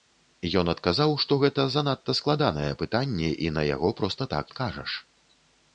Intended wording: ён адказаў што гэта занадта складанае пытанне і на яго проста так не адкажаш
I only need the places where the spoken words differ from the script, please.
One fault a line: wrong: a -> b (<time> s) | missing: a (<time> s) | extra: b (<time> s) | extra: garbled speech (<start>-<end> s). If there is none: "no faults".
missing: не (4.5 s)